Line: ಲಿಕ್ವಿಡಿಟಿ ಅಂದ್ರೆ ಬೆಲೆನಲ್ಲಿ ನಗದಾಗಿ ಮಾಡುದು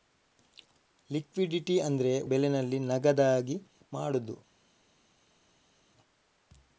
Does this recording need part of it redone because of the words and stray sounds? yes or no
no